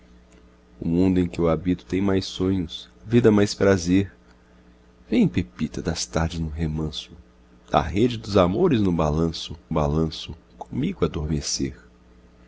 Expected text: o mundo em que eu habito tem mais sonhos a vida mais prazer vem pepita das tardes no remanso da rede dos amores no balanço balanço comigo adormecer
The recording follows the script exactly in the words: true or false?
true